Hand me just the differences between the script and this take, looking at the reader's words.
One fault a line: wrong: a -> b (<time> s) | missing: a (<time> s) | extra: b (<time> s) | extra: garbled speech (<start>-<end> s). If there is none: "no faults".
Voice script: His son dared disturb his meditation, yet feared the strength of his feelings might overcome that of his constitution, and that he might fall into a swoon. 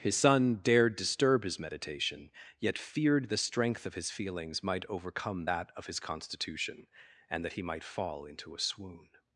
no faults